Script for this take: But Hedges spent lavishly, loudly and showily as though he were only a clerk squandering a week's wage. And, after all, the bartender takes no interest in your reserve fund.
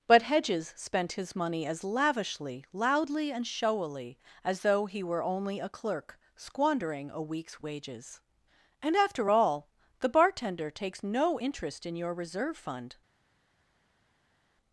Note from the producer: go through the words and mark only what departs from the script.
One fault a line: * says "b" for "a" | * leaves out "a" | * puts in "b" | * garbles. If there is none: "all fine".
* puts in "his money as"
* says "wages" for "wage"